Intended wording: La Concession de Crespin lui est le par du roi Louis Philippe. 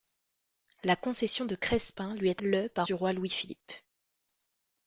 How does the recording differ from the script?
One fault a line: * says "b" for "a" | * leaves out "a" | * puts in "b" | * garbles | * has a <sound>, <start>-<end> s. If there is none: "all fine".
all fine